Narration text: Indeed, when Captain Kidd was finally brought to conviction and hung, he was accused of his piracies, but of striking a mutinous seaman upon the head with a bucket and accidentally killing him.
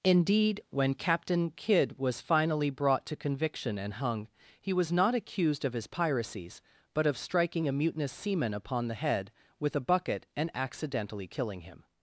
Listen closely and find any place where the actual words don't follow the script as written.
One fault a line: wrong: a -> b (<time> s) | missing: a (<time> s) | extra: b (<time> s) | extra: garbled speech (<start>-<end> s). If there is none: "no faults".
extra: not (4.9 s)